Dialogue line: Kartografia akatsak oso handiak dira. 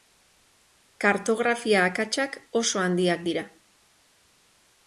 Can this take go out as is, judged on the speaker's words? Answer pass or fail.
pass